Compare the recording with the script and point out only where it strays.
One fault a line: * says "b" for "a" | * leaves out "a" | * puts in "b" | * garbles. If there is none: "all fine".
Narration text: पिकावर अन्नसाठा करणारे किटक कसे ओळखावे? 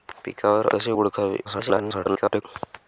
* leaves out "अन्नसाठा करणारे किटक"
* garbles